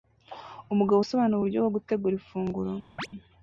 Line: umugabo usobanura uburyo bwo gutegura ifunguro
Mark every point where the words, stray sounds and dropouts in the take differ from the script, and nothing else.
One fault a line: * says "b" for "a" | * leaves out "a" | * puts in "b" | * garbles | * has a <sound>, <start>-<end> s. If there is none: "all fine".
* has a chirp, 3.0-3.1 s